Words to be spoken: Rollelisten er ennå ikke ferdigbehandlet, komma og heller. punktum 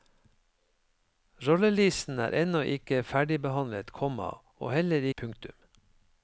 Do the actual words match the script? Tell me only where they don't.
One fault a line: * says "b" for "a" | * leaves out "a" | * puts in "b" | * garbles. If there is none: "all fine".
all fine